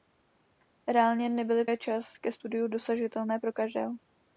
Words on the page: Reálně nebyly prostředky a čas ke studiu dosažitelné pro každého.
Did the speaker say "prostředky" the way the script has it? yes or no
no